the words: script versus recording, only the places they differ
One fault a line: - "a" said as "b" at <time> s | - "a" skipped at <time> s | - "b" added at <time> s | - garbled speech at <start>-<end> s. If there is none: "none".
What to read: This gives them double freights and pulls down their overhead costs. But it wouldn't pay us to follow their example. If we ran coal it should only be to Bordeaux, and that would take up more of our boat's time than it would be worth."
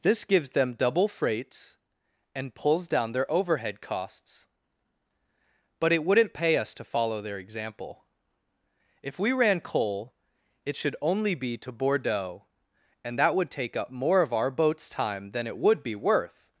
none